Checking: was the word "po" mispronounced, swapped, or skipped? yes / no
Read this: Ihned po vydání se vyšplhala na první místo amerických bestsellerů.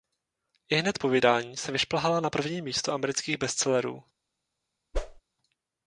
no